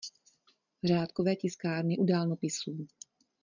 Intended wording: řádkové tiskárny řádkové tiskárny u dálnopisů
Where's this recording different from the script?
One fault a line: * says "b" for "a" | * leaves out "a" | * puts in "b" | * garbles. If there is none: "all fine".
* leaves out "řádkové tiskárny"